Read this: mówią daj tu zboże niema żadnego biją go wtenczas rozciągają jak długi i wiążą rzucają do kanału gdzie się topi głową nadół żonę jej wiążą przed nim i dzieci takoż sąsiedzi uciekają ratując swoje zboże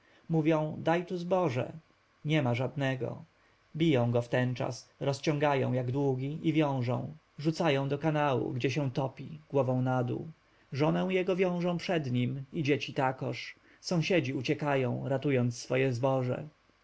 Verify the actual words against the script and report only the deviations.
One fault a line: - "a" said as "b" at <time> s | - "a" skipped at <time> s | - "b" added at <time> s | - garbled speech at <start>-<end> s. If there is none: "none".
- "jej" said as "jego" at 11.1 s